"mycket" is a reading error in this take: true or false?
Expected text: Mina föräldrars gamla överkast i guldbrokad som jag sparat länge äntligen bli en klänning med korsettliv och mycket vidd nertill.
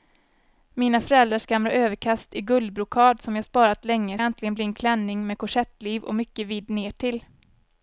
false